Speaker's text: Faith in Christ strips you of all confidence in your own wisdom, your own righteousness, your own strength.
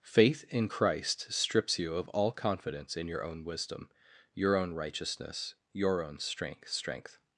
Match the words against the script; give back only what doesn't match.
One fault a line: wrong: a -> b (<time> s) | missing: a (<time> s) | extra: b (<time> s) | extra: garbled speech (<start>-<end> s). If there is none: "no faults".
extra: strength (6.7 s)